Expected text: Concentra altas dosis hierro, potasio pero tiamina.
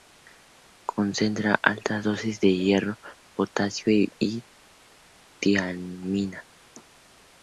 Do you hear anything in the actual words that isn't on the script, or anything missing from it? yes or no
yes